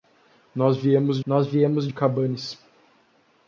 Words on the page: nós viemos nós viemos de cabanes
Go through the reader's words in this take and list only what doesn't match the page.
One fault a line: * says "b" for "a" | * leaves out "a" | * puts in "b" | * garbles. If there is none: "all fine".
all fine